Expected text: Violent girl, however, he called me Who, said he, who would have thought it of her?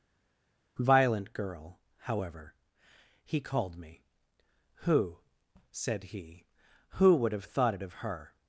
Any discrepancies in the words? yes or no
no